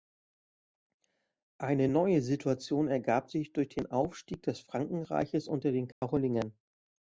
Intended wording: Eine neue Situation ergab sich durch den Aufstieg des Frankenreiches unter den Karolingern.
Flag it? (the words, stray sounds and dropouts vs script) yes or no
yes